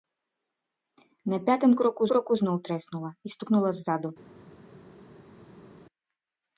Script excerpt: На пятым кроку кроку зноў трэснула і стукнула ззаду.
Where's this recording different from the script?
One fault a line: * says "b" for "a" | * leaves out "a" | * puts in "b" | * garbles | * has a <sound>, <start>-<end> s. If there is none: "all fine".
all fine